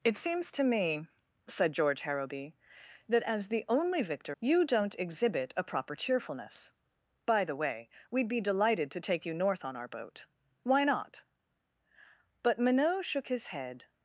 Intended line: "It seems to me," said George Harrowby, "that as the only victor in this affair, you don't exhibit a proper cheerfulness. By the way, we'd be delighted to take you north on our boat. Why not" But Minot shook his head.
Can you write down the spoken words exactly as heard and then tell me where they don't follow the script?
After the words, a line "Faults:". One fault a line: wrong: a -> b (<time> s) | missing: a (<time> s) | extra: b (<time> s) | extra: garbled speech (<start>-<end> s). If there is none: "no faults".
"It seems to me," said George Harrowby, "that as the only victor you don't exhibit a proper cheerfulness. By the way, we'd be delighted to take you north on our boat. Why not" But Minot shook his head.
Faults:
missing: in this affair (4.3 s)